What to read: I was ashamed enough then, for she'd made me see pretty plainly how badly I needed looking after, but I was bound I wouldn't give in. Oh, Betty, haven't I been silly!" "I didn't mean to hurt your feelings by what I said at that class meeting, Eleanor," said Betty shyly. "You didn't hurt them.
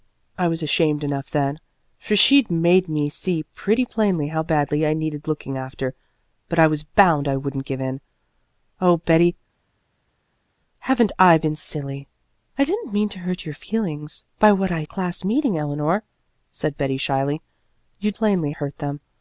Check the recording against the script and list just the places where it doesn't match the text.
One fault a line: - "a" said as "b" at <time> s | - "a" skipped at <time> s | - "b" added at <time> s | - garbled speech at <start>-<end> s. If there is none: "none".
- "said at that" skipped at 14.8 s
- "didn't" said as "plainly" at 18.1 s